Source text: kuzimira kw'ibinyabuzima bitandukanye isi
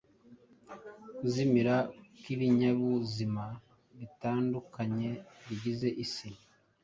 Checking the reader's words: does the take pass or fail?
fail